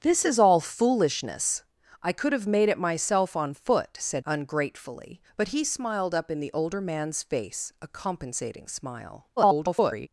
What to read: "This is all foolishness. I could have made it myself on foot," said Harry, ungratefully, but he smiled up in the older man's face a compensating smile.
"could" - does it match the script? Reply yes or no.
yes